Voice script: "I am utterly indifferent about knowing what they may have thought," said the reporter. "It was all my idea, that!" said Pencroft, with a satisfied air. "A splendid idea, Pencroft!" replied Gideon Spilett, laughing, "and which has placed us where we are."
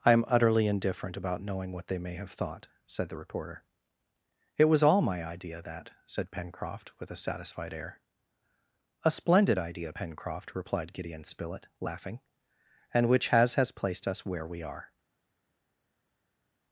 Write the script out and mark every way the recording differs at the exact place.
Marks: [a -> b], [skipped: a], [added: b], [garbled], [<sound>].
"I am utterly indifferent about knowing what they may have thought," said the reporter. "It was all my idea, that!" said Pencroft, with a satisfied air. "A splendid idea, Pencroft!" replied Gideon Spilett, laughing, "and which has [added: has] placed us where we are."